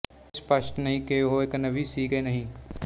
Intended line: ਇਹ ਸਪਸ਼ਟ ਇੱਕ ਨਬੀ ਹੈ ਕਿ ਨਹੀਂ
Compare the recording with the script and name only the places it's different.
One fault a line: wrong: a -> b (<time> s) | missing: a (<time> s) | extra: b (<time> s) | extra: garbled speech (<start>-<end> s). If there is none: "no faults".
extra: ਨਹੀਂ ਕਿ ਉਹ (0.8 s)
wrong: ਹੈ -> ਸੀ (1.8 s)